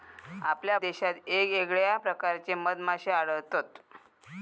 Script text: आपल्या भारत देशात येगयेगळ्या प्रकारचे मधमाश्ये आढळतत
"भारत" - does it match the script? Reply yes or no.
no